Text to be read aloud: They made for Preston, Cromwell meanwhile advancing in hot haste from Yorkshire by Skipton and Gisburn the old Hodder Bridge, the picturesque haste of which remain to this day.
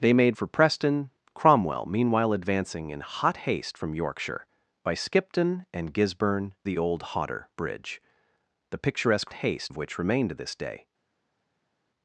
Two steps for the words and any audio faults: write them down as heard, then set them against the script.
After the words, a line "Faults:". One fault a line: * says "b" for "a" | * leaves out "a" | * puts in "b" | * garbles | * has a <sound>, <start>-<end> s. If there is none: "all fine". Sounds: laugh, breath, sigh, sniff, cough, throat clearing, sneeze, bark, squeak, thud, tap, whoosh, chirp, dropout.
They made for Preston, Cromwell meanwhile advancing in hot haste from Yorkshire by Skipton and Gisburn the old Hodder Bridge, the picturesque haste of which remain to this day.
Faults:
all fine